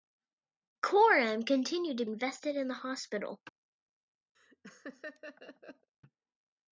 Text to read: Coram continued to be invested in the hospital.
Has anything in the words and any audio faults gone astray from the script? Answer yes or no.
yes